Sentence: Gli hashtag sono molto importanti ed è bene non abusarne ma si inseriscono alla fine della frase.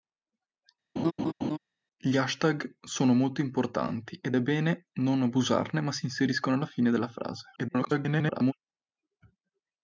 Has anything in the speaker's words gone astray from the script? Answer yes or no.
yes